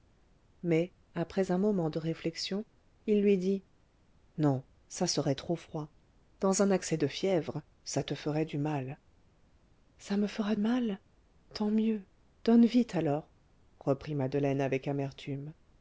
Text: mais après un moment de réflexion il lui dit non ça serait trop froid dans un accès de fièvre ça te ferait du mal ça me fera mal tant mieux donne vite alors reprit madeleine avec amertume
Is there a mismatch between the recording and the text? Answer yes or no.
no